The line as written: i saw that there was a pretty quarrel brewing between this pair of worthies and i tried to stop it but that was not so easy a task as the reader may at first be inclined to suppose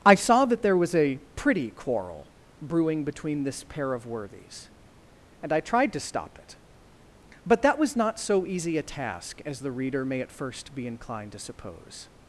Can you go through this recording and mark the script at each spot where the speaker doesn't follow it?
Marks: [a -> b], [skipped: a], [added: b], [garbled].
i saw that there was a pretty quarrel brewing between this pair of worthies and i tried to stop it but that was not so easy a task as the reader may at first be inclined to suppose